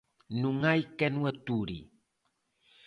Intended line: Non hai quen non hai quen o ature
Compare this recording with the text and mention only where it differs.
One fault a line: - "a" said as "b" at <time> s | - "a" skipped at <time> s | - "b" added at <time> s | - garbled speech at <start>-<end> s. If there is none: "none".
- "non hai quen" skipped at 1.1 s